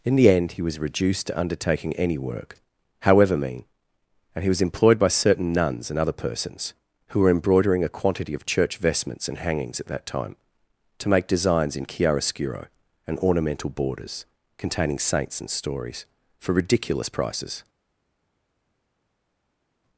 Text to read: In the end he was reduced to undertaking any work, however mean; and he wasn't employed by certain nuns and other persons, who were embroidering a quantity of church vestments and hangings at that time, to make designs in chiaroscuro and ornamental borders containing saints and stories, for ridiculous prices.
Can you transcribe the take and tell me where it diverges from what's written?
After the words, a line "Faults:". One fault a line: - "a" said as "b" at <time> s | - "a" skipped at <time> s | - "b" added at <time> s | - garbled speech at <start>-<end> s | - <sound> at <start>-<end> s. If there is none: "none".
In the end he was reduced to undertaking any work, however mean; and he was employed by certain nuns and other persons, who were embroidering a quantity of church vestments and hangings at that time, to make designs in chiaroscuro and ornamental borders containing saints and stories, for ridiculous prices.
Faults:
- "wasn't" said as "was" at 4.5 s